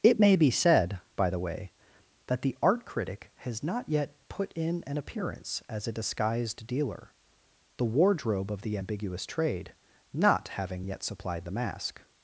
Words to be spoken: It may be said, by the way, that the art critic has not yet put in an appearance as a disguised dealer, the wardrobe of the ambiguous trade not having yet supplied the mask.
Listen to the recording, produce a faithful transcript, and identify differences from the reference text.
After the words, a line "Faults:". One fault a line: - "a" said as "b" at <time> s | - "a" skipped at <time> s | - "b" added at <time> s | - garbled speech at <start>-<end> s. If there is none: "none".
It may be said, by the way, that the art critic has not yet put in an appearance as a disguised dealer, the wardrobe of the ambiguous trade not having yet supplied the mask.
Faults:
none